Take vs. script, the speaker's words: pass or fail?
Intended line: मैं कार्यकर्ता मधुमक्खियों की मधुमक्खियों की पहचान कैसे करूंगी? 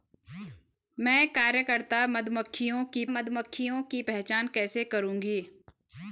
pass